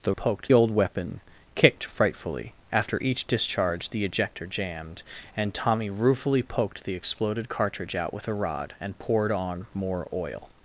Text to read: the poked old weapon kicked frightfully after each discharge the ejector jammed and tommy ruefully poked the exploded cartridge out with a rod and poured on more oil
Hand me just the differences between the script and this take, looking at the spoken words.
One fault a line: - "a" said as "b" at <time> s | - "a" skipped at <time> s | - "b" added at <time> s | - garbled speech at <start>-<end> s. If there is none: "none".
none